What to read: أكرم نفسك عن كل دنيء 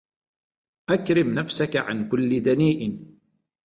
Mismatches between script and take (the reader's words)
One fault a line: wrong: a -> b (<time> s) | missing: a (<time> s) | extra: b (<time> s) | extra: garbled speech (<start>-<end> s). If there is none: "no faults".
no faults